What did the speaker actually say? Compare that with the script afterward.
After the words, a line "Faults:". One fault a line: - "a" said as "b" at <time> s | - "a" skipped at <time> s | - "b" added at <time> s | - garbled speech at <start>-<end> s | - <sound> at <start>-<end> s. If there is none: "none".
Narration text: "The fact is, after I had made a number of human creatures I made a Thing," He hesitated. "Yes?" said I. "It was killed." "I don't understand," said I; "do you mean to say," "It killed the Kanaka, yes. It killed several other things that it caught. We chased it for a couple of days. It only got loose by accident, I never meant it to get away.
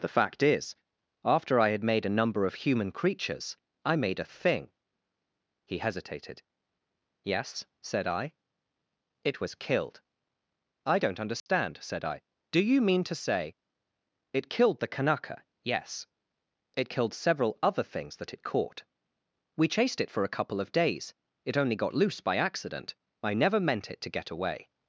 "The fact is, after I had made a number of human creatures I made a Thing," He hesitated. "Yes?" said I. "It was killed." "I don't understand," said I; "do you mean to say," "It killed the Kanaka, yes. It killed several other things that it caught. We chased it for a couple of days. It only got loose by accident, I never meant it to get away.
Faults:
- dropout at 11.4-11.5 s